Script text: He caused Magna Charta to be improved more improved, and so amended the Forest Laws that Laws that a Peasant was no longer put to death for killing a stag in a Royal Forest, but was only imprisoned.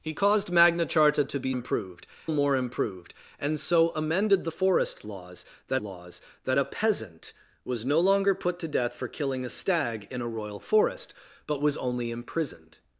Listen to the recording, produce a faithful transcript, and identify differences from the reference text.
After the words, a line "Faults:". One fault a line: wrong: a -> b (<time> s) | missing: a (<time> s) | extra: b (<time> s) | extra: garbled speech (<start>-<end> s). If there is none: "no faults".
He caused Magna Charta to be improved more improved, and so amended the Forest Laws that Laws that a Peasant was no longer put to death for killing a stag in a Royal Forest, but was only imprisoned.
Faults:
no faults